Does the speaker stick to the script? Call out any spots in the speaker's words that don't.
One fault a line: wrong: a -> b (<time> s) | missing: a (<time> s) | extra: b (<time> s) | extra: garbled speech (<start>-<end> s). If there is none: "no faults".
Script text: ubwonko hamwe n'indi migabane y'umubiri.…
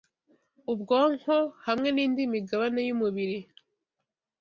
no faults